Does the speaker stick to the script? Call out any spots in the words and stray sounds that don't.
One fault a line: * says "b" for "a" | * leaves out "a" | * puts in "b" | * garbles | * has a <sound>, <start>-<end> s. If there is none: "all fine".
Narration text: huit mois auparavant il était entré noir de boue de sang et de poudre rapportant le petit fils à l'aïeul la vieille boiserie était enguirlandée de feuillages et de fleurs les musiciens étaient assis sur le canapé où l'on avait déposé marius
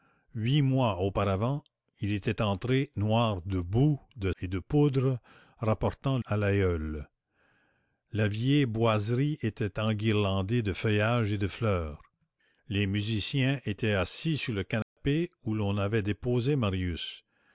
* leaves out "sang"
* leaves out "le petit fils"
* has a dropout, 14.8-15.0 s